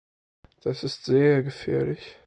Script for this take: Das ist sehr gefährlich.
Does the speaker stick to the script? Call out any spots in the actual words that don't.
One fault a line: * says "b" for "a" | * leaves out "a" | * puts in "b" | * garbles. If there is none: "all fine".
all fine